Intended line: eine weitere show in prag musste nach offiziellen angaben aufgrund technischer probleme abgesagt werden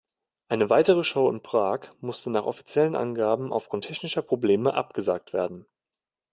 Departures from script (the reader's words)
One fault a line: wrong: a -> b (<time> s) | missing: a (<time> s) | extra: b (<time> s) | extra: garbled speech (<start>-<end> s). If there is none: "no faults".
no faults